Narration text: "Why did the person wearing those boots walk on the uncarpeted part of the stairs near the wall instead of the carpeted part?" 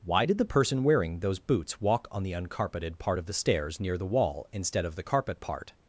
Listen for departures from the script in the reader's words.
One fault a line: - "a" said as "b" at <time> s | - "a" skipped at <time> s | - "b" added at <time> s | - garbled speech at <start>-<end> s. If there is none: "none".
- "carpeted" said as "carpet" at 5.0 s